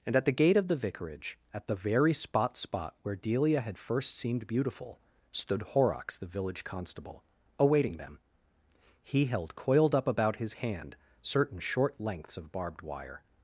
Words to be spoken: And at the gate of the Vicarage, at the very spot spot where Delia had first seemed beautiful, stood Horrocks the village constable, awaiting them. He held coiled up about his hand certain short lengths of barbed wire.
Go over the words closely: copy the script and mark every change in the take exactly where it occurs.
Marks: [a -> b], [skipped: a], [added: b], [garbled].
And at the gate of the Vicarage, at the very spot spot where Delia had first seemed beautiful, stood Horrocks the village constable, awaiting them. He held coiled up about his hand certain short lengths of barbed wire.